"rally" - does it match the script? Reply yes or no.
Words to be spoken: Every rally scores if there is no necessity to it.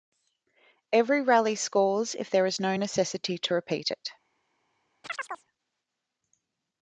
yes